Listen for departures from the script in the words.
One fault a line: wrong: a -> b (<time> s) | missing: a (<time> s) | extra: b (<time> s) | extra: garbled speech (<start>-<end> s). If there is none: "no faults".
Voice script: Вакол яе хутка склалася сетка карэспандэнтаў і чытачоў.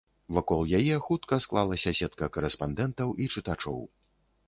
no faults